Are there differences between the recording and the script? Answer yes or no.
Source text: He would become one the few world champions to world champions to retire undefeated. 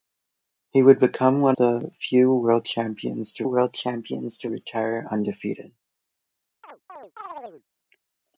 no